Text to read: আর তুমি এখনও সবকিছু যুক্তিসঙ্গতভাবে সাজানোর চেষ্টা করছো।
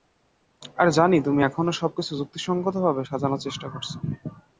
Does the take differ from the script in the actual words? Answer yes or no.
yes